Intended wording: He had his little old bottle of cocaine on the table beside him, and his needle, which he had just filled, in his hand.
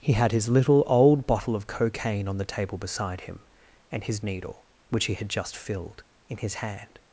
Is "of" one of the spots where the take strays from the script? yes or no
no